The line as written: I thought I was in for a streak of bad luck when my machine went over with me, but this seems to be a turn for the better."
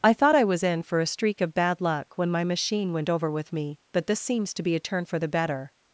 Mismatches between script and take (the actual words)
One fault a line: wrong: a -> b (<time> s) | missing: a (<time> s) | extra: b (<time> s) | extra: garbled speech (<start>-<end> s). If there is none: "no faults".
no faults